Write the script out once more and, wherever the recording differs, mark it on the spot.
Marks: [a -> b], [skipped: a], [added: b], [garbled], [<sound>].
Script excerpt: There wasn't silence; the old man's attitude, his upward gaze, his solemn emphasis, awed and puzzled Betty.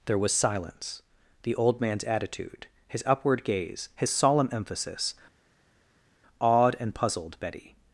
There [wasn't -> was] silence; the old man's attitude, his upward gaze, his solemn emphasis, awed and puzzled Betty.